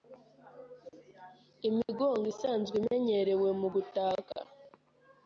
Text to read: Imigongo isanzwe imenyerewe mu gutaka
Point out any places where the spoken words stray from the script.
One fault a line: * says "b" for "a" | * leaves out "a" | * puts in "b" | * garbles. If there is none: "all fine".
all fine